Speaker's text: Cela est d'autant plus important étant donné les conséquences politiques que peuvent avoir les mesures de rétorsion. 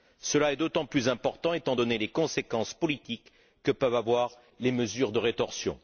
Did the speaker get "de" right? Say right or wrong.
right